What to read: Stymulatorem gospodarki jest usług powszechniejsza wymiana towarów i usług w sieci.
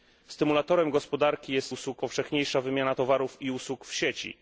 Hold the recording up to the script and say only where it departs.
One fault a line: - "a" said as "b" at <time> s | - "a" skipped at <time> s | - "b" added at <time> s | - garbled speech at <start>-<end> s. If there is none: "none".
none